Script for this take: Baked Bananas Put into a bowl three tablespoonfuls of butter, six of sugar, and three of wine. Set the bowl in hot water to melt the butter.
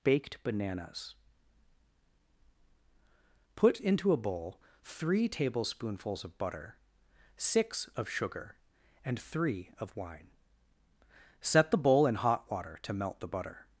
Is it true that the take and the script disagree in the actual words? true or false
false